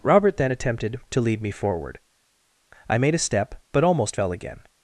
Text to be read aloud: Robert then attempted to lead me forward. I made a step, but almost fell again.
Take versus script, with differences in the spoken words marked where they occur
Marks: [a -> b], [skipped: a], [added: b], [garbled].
Robert then attempted to lead me forward. I made a step, but almost fell again.